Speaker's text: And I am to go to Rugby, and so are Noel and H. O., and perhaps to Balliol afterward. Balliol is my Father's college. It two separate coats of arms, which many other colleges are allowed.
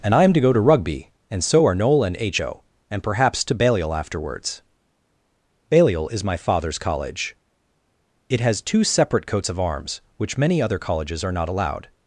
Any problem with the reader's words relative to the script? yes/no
yes